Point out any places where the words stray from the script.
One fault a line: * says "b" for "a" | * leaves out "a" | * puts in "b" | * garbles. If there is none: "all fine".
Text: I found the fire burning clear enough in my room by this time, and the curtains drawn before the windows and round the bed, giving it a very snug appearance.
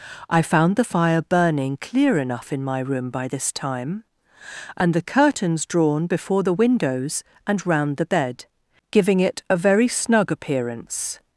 all fine